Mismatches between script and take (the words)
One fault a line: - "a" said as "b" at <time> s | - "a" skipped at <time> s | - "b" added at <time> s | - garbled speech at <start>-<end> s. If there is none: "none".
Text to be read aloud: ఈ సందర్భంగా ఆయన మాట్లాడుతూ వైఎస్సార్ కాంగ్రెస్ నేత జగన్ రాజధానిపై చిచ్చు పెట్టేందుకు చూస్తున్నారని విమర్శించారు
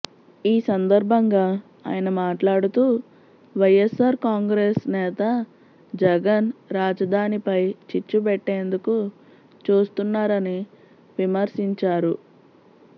none